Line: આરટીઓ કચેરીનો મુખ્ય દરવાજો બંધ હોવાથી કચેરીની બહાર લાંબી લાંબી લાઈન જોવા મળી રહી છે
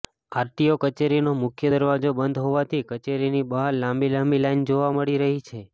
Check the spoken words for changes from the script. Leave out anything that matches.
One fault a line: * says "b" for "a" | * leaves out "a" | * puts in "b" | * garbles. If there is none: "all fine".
all fine